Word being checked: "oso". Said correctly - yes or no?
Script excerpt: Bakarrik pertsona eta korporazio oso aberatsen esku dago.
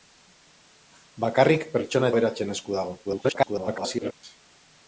no